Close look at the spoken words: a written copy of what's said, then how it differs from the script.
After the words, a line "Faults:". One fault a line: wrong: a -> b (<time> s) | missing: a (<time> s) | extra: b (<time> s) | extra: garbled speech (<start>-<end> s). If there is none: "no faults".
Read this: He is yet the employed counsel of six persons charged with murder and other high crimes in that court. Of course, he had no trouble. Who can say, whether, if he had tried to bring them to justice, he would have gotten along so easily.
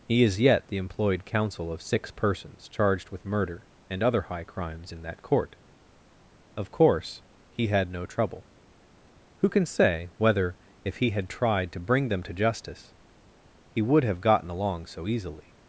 He is yet the employed counsel of six persons charged with murder and other high crimes in that court. Of course, he had no trouble. Who can say, whether, if he had tried to bring them to justice, he would have gotten along so easily.
Faults:
no faults